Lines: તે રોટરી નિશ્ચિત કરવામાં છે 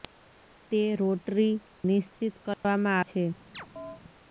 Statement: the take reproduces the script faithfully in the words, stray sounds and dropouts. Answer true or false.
false